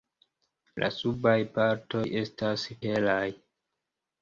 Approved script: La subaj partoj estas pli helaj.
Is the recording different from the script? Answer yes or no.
yes